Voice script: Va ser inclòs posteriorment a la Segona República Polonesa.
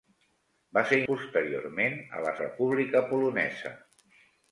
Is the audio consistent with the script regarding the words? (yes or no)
no